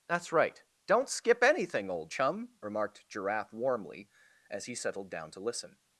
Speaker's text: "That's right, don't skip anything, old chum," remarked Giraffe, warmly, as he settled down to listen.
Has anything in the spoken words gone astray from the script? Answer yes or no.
no